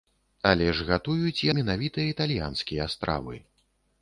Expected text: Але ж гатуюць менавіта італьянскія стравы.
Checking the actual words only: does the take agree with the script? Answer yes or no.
yes